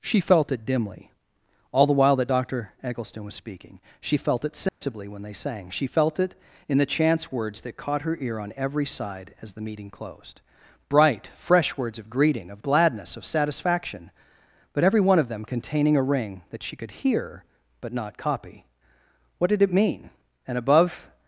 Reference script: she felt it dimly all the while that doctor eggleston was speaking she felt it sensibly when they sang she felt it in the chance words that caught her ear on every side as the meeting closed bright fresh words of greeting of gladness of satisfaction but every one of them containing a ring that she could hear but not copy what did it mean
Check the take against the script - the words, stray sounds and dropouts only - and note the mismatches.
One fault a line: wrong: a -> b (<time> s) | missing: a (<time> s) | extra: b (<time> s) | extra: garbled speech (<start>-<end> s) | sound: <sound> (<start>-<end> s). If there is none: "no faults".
sound: dropout (4.7-4.8 s)
extra: and above (20.5 s)